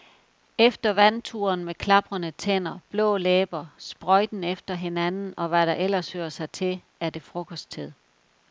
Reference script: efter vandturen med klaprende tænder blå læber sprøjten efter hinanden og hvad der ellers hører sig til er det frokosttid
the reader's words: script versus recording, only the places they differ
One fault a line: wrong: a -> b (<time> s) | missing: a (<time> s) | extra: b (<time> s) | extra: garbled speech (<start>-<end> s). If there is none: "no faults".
no faults